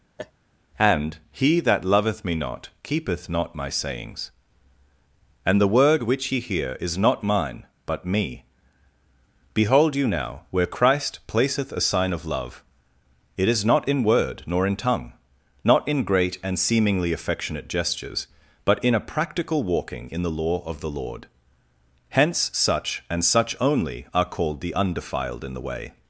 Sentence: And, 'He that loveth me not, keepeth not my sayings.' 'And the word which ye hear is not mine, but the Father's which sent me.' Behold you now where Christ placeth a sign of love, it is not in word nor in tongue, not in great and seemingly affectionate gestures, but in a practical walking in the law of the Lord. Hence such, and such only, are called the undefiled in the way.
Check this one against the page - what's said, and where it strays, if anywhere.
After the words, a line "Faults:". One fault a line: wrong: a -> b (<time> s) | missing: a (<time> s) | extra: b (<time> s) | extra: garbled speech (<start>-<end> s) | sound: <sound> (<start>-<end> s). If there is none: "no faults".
And, 'He that loveth me not, keepeth not my sayings.' 'And the word which ye hear is not mine, but me.' Behold you now where Christ placeth a sign of love, it is not in word nor in tongue, not in great and seemingly affectionate gestures, but in a practical walking in the law of the Lord. Hence such, and such only, are called the undefiled in the way.
Faults:
sound: laugh (0.2-0.3 s)
missing: the Father's which sent (8.0 s)